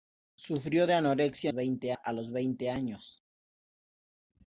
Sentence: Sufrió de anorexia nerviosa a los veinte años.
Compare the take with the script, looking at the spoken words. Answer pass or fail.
fail